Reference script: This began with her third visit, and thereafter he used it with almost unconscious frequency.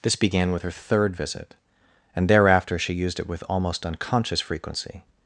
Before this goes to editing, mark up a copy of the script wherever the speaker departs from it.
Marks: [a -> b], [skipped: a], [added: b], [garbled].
This began with her third visit, and thereafter [he -> she] used it with almost unconscious frequency.